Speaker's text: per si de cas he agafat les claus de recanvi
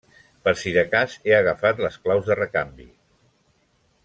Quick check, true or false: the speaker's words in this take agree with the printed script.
true